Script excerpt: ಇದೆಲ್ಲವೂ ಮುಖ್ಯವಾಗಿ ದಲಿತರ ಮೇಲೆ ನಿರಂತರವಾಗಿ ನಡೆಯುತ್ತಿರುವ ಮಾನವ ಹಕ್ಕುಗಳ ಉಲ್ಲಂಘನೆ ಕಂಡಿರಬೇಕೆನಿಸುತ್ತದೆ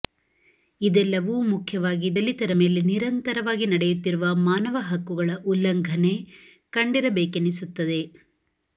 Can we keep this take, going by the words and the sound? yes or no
yes